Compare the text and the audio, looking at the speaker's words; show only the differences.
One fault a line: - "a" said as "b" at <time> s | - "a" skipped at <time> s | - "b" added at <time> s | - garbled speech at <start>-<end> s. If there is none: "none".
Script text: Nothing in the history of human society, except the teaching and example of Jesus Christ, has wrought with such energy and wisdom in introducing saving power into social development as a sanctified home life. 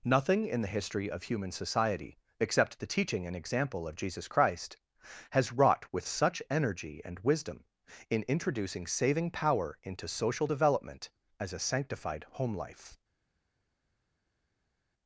none